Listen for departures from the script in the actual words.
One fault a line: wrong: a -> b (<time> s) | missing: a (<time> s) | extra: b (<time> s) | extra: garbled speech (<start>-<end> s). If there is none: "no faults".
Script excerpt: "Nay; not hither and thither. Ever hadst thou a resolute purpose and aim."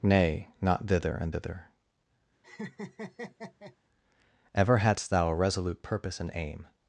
wrong: hither -> thither (0.9 s)